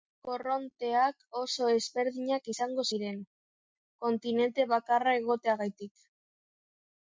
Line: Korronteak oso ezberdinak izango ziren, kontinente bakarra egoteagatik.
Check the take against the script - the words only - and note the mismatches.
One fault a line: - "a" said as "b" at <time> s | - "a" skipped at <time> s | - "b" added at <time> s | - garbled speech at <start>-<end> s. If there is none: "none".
none